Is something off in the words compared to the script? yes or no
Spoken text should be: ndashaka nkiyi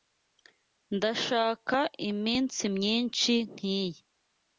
yes